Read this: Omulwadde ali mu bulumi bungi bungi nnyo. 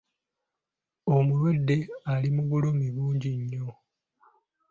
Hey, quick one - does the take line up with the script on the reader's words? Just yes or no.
no